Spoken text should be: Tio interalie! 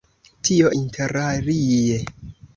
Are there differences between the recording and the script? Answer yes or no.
no